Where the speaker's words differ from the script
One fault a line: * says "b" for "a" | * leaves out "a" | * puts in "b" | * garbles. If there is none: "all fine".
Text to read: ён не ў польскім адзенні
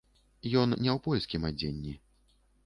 all fine